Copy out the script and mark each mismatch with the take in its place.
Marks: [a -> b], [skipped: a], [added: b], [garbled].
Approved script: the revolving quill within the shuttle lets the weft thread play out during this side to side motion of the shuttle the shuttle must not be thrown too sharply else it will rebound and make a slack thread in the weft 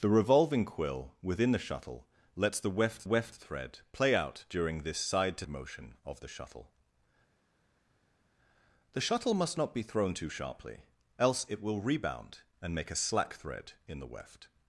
the revolving quill within the shuttle lets the weft [added: weft] thread play out during this side to [skipped: side] motion of the shuttle the shuttle must not be thrown too sharply else it will rebound and make a slack thread in the weft